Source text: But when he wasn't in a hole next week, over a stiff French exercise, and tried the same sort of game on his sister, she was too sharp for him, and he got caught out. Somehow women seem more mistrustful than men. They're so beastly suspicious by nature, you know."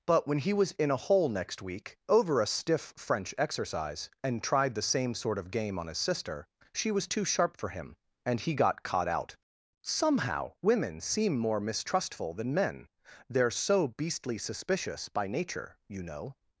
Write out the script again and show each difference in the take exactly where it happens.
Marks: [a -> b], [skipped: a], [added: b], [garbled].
But when he [wasn't -> was] in a hole next week, over a stiff French exercise, and tried the same sort of game on his sister, she was too sharp for him, and he got caught out. Somehow women seem more mistrustful than men. They're so beastly suspicious by nature, you know."